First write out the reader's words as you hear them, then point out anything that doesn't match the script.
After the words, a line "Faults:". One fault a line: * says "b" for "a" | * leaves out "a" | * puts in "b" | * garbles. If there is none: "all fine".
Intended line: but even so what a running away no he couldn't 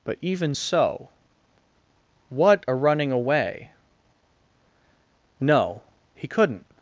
but even so what a running away no he couldn't
Faults:
all fine